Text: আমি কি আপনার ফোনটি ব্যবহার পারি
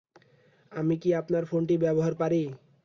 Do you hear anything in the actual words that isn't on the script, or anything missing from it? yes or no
no